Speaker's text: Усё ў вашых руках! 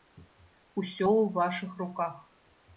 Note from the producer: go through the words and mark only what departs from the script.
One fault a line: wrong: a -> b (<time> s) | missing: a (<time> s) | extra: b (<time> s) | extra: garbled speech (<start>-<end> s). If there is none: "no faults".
no faults